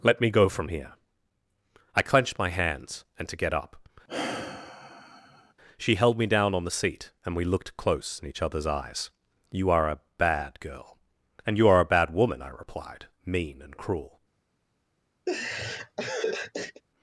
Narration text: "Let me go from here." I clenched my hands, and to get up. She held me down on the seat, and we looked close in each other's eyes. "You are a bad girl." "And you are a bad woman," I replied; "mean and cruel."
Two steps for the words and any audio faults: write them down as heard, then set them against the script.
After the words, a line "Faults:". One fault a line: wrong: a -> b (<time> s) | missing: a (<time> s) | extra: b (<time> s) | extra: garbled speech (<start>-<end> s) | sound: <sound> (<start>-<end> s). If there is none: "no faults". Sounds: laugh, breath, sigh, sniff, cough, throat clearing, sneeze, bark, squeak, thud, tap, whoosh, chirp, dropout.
"Let me go from here." I clenched my hands, and to get up. She held me down on the seat, and we looked close in each other's eyes. "You are a bad girl." "And you are a bad woman," I replied; "mean and cruel."
Faults:
sound: sigh (4.1-5.5 s)
sound: laugh (15.3-16.8 s)